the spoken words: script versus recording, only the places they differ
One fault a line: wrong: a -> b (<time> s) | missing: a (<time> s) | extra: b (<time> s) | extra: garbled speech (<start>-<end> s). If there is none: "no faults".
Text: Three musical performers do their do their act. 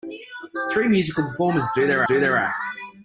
no faults